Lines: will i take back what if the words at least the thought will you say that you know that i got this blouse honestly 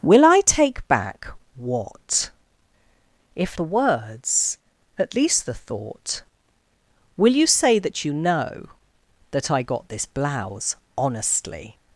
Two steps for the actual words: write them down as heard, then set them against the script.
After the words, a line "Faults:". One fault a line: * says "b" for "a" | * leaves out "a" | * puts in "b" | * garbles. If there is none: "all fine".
will i take back what if the words at least the thought will you say that you know that i got this blouse honestly
Faults:
all fine